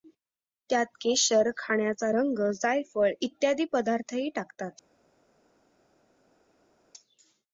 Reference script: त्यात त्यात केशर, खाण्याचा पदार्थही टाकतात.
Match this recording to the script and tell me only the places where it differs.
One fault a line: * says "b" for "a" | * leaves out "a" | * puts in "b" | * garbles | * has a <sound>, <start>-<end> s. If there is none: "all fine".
* leaves out "त्यात"
* puts in "रंग जायफळ इत्यादी"